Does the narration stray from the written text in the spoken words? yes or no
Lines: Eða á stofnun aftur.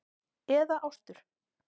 yes